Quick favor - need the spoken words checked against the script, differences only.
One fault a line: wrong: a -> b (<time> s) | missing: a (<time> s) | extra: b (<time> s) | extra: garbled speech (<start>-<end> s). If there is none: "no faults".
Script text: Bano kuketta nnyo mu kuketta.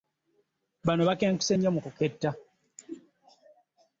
wrong: kuketta -> bakenkuse (1.1 s)